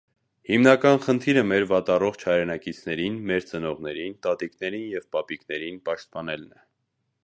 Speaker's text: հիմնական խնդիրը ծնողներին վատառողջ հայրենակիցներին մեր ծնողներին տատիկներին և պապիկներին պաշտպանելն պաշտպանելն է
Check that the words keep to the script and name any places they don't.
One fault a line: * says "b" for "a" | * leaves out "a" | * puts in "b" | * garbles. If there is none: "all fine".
* says "մեր" for "ծնողներին"
* leaves out "պաշտպանելն"